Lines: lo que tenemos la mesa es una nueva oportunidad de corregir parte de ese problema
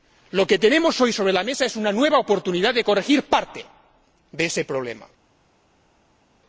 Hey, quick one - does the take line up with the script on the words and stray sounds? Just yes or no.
no